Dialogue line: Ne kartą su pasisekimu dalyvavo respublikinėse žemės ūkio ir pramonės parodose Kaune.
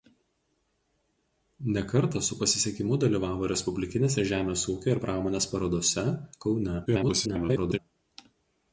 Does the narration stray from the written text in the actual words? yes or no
yes